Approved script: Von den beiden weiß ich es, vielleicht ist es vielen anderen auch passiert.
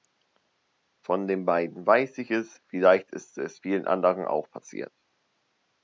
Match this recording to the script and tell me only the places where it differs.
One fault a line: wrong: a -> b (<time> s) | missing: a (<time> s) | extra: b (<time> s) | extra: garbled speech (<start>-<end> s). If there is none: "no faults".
no faults